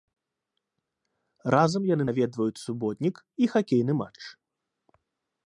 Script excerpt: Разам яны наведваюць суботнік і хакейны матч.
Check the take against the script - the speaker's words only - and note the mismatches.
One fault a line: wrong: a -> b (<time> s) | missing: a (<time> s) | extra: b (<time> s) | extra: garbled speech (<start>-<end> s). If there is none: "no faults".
no faults